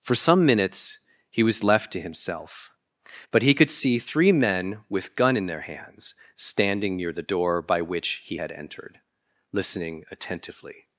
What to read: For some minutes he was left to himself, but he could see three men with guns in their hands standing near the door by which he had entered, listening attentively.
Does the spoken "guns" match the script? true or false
false